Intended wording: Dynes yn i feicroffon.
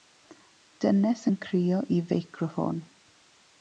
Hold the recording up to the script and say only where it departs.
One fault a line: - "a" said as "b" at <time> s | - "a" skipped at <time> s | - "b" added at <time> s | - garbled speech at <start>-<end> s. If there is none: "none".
- "crio" added at 1.5 s